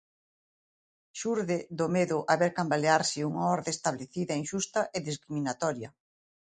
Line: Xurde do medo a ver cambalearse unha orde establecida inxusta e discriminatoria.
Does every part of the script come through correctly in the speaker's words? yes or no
yes